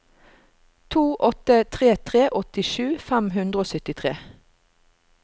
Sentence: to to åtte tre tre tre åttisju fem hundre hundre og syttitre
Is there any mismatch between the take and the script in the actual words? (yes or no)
yes